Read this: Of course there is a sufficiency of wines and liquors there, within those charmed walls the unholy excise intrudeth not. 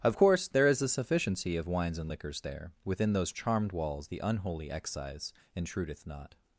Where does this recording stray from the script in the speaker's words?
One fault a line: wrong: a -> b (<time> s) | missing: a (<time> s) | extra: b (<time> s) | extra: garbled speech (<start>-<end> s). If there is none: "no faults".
no faults